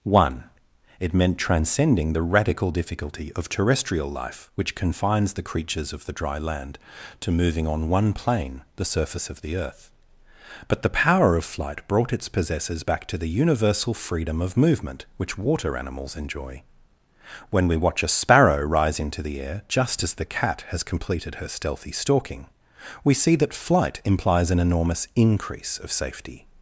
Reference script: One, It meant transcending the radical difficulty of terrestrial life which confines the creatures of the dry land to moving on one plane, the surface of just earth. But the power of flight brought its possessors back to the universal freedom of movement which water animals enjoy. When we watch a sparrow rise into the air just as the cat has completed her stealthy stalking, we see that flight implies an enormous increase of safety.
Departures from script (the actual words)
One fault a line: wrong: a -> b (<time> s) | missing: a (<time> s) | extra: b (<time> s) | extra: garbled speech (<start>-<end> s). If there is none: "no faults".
wrong: just -> the (9.4 s)